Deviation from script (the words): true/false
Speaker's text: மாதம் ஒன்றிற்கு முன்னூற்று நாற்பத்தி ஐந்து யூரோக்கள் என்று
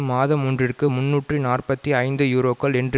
false